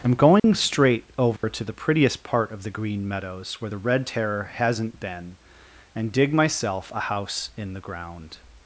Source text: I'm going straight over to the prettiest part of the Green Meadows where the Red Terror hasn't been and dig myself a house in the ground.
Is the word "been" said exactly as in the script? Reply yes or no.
yes